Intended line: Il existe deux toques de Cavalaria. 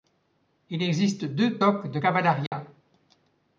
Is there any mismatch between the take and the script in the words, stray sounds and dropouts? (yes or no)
yes